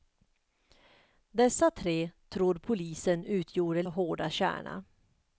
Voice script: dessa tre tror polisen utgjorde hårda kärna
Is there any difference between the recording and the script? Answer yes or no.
no